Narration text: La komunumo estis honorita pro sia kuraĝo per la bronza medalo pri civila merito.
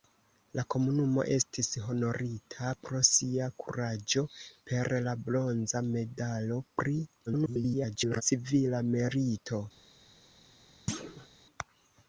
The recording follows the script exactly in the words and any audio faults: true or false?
false